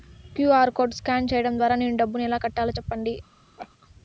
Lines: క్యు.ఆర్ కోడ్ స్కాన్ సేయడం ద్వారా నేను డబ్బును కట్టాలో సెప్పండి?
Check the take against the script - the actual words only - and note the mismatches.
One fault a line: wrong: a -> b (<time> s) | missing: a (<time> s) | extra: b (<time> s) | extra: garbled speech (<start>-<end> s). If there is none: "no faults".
extra: ఎలా (2.3 s)